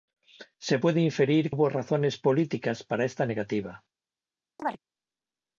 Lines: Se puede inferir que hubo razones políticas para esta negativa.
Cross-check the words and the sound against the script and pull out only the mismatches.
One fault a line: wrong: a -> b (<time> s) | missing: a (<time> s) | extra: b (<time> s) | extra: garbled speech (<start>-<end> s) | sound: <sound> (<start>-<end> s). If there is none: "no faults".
missing: que (1.5 s)
sound: chirp (4.6-4.8 s)